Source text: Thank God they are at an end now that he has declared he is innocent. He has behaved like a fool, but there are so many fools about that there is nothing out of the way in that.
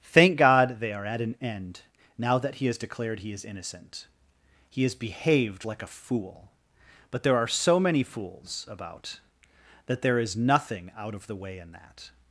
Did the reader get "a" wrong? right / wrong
right